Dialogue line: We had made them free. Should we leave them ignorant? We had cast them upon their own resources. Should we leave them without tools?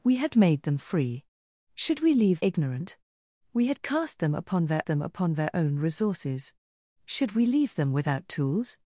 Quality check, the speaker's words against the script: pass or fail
fail